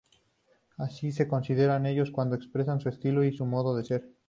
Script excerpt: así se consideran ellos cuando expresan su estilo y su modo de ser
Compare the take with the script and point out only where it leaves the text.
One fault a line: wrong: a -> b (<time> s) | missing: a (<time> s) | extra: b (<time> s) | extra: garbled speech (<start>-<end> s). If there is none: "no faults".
no faults